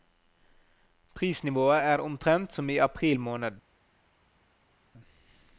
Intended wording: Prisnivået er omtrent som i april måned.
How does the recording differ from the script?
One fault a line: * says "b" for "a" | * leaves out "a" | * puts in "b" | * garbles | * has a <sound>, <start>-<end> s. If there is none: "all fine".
all fine